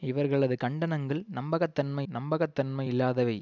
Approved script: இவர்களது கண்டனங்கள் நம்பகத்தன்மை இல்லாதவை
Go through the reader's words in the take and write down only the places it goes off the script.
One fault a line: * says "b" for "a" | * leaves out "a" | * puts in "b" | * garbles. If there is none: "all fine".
* puts in "நம்பகத்தன்மை"